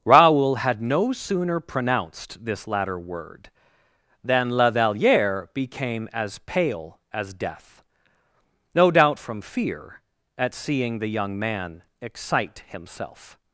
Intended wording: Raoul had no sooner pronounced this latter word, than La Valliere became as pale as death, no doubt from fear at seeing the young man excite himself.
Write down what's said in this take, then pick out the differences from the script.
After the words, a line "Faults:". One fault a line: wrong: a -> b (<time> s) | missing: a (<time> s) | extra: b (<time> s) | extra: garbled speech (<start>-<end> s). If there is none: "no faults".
Raoul had no sooner pronounced this latter word, than La Valliere became as pale as death, no doubt from fear at seeing the young man excite himself.
Faults:
no faults